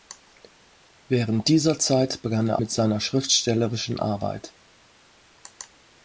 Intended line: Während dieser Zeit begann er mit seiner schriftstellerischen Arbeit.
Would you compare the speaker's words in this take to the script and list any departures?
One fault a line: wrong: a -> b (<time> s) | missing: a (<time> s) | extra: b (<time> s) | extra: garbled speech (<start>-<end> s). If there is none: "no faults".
no faults